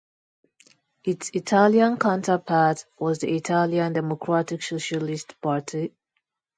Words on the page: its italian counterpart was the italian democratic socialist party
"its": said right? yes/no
yes